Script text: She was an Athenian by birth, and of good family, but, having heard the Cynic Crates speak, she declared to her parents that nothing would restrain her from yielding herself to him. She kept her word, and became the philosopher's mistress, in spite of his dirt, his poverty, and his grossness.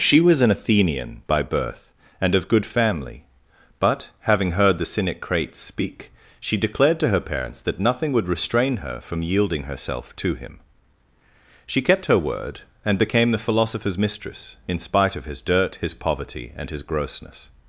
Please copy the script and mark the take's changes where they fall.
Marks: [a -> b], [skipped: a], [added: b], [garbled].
She was an Athenian by birth, and of good family, but, having heard the Cynic Crates speak, she declared to her parents that nothing would restrain her from yielding herself to him. She kept her word, and became the philosopher's mistress, in spite of his dirt, his poverty, and his grossness.